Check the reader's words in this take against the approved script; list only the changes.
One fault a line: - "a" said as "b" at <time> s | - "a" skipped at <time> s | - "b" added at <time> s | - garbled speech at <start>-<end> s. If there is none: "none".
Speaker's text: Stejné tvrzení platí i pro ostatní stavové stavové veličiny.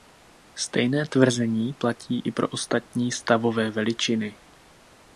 - "stavové" skipped at 3.7 s